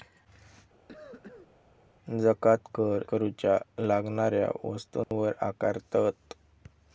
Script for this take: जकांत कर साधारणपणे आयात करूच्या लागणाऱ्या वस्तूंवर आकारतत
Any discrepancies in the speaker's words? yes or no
yes